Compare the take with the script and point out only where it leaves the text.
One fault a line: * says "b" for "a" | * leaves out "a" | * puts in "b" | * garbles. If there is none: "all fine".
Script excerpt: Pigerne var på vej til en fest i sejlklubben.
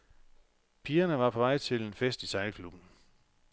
all fine